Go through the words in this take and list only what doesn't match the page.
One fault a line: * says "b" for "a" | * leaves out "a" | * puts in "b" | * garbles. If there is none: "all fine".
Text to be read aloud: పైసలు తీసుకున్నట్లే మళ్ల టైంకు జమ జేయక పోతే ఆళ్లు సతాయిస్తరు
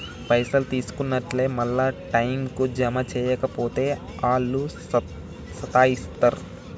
all fine